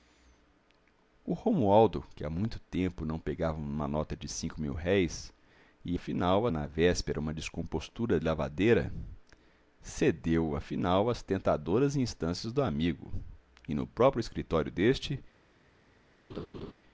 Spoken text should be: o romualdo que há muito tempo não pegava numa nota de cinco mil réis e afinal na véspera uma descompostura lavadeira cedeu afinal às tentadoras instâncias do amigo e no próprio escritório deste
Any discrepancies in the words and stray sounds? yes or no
yes